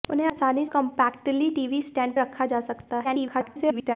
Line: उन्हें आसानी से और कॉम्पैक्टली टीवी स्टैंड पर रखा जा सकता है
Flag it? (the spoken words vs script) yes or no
yes